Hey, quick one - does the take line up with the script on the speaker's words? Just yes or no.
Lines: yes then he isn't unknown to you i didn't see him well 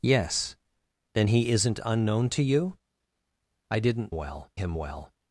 no